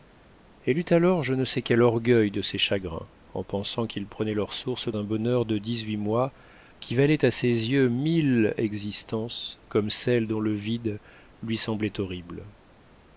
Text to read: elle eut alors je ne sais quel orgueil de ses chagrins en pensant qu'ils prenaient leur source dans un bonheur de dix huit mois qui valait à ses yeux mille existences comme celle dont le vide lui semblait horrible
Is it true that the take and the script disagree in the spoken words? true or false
true